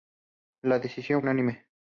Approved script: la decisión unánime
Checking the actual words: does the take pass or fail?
pass